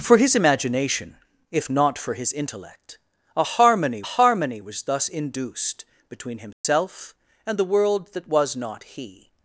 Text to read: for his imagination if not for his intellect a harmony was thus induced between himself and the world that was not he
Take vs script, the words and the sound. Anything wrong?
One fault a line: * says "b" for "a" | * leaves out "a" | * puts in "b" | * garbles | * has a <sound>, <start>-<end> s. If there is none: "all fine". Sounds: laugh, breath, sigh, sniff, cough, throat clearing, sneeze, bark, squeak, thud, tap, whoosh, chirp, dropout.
* puts in "harmony"
* has a dropout, 6.5-6.6 s